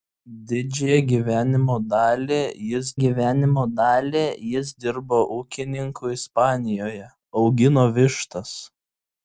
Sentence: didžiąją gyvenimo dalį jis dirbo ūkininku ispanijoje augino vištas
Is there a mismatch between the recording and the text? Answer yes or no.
yes